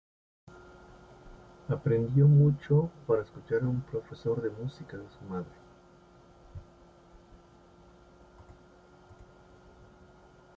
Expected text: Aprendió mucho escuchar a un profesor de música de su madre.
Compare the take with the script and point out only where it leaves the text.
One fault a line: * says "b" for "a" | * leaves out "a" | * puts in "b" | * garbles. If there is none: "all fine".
* puts in "para"